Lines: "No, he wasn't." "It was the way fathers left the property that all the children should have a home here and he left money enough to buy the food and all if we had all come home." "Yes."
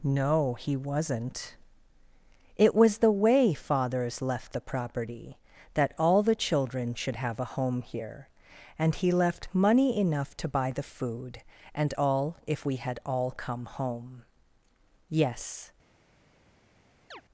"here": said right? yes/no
yes